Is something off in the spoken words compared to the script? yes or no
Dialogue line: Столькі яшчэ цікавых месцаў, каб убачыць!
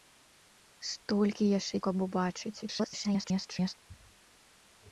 yes